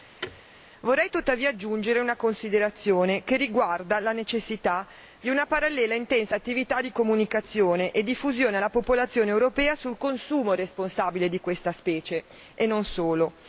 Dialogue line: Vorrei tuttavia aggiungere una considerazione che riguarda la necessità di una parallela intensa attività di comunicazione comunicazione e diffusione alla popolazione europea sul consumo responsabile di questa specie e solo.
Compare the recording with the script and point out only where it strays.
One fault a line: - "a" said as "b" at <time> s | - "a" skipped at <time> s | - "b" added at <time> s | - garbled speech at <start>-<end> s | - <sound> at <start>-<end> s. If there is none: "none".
- thud at 0.2-0.4 s
- "comunicazione" skipped at 7.9 s
- "non" added at 12.7 s